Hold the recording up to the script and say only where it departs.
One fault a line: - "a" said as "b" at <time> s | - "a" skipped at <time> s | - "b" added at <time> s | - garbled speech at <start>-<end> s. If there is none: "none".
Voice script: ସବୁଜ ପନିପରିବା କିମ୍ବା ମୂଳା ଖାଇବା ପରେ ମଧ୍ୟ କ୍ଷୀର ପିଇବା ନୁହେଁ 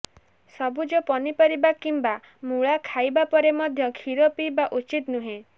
- "ଉଚିତ" added at 4.7 s